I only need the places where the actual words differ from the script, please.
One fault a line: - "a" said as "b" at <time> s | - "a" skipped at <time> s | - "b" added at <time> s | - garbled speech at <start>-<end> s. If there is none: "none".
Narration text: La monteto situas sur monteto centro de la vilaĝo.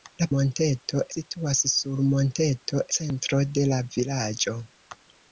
none